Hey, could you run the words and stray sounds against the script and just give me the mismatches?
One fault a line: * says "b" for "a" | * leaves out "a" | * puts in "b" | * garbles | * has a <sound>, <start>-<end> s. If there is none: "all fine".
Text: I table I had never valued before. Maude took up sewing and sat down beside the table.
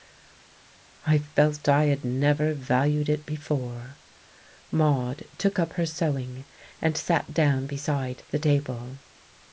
* says "felt" for "table"
* puts in "it"
* puts in "her"